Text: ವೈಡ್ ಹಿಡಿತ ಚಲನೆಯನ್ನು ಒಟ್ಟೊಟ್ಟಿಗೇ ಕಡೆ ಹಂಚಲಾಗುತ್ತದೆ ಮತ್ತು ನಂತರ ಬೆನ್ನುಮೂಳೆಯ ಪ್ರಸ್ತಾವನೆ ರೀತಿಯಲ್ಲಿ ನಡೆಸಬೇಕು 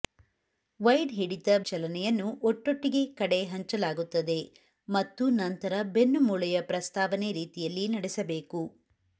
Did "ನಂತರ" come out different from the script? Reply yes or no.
no